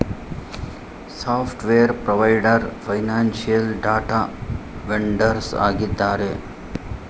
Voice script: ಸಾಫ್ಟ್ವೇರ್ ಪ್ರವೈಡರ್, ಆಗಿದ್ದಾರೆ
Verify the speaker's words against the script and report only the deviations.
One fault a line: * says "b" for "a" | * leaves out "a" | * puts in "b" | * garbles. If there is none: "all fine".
* puts in "ಫೈನಾನ್ಸಿಯಲ್ ಡಾಟಾ ವೆಂಡರ್ಸ್"